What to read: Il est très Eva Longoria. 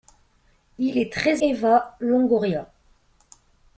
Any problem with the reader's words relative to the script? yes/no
no